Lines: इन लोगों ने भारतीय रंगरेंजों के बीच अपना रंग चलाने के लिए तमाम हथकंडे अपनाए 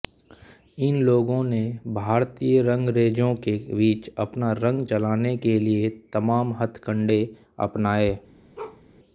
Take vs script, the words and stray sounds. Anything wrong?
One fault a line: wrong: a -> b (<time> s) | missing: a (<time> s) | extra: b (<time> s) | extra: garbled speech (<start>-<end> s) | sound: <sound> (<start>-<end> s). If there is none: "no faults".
sound: bark (8.6-8.8 s)